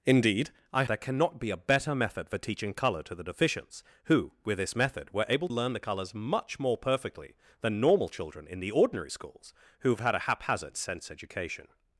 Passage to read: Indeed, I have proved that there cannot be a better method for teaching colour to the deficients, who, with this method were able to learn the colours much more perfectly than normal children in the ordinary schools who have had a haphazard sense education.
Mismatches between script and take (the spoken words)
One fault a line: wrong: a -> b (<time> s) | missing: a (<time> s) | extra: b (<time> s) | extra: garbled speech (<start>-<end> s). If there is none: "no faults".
missing: have proved that (0.8 s)
missing: to (5.5 s)